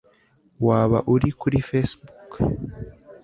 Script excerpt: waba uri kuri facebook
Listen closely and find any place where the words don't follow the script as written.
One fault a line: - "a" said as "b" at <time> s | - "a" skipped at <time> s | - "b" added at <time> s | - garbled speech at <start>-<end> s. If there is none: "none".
none